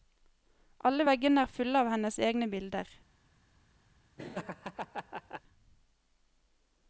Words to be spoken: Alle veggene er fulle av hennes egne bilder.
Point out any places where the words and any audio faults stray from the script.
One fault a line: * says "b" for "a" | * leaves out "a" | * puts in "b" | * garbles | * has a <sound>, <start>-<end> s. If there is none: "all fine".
* has a laugh, 4.2-5.4 s